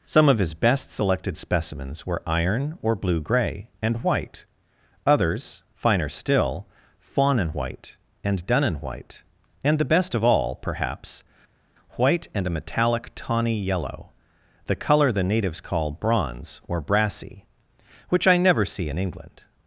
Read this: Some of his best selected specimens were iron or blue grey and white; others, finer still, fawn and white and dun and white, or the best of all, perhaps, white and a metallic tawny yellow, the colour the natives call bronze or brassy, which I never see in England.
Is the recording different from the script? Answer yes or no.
yes